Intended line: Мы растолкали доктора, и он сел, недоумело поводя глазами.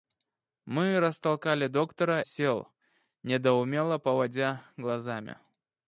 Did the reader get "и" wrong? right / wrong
wrong